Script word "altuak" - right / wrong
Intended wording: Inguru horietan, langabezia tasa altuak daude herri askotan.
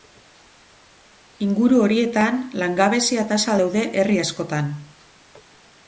wrong